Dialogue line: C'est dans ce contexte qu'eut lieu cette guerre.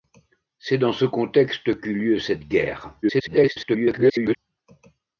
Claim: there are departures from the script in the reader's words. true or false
true